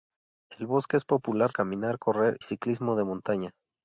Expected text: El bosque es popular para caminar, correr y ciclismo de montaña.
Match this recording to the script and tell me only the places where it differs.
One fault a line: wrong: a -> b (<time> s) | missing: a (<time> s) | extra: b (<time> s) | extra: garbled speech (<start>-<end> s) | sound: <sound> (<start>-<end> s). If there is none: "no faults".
missing: para (1.5 s)
missing: y (2.4 s)